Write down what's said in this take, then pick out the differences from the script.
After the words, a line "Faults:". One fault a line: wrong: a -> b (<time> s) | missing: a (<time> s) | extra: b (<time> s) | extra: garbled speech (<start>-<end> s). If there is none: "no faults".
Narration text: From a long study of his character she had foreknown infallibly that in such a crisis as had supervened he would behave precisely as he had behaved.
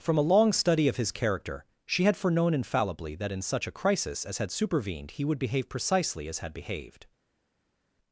From a long study of his character she had foreknown infallibly that in such a crisis as had supervened he would behave precisely as had behaved.
Faults:
missing: he (6.4 s)